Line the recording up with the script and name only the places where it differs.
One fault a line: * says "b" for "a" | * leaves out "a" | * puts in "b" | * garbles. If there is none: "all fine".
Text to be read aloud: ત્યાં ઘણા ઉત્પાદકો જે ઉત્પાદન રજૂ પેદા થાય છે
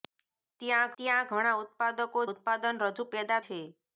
* puts in "ત્યાં"
* leaves out "જે"
* leaves out "થાય"